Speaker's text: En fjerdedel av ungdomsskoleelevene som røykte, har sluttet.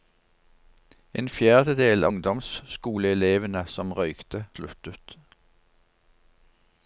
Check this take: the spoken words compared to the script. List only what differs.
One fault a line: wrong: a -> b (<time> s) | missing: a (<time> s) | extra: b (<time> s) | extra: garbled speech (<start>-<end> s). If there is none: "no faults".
missing: av (2.1 s)
missing: har (4.4 s)